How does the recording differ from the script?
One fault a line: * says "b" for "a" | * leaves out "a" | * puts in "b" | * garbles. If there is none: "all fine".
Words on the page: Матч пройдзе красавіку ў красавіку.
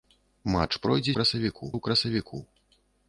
all fine